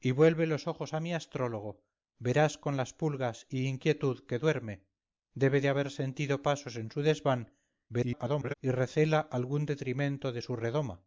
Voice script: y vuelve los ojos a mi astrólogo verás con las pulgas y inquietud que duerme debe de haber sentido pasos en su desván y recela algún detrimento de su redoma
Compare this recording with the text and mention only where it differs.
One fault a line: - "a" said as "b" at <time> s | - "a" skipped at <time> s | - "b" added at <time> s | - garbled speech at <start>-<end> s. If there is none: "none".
- garbled speech at 7.9-8.5 s